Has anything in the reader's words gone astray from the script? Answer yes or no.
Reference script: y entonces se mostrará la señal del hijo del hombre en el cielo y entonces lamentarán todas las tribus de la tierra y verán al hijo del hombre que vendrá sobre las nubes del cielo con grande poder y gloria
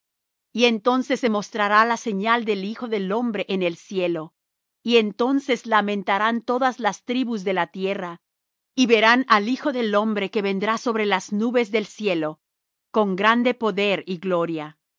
no